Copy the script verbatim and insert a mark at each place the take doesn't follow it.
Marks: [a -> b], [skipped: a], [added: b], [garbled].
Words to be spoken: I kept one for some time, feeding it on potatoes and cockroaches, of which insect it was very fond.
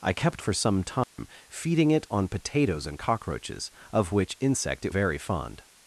I kept [skipped: one] for some time, feeding it on potatoes and cockroaches, of which insect it [skipped: was] very fond.